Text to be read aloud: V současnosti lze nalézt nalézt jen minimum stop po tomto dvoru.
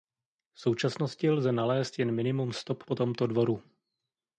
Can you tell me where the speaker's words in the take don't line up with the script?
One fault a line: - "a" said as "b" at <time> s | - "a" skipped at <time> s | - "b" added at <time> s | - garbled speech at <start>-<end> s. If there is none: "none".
- "nalézt" skipped at 2.0 s